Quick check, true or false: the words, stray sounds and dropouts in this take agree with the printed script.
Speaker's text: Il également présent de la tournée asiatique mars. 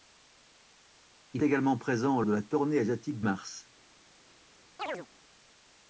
false